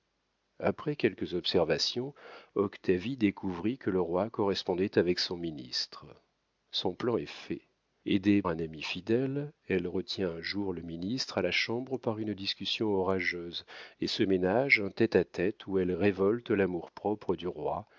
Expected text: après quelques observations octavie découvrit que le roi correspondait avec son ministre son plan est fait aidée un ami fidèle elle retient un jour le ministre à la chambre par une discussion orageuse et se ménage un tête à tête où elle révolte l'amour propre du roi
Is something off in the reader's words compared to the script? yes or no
no